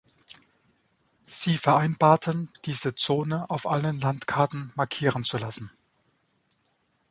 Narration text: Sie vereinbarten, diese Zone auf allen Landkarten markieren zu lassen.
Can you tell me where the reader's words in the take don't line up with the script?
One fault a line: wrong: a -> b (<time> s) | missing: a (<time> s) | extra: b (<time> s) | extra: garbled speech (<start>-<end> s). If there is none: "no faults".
no faults